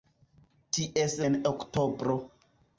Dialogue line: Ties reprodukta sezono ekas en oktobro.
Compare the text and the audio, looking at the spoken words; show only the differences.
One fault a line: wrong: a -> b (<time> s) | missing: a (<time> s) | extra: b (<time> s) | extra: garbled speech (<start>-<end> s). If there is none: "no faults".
missing: reprodukta sezono ekas (1.2 s)